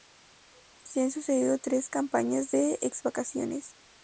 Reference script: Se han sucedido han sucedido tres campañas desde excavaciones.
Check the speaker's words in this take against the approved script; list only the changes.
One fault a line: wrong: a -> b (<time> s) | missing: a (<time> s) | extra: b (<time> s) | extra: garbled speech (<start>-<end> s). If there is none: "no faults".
missing: han sucedido (1.6 s)
wrong: desde -> de (2.5 s)